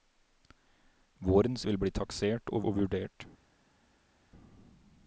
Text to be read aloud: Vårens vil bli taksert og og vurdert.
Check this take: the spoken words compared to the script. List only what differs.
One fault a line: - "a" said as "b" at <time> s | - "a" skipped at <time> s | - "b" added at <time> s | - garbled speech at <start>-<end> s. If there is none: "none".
none